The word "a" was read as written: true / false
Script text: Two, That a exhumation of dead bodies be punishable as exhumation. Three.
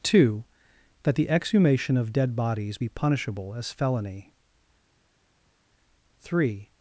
false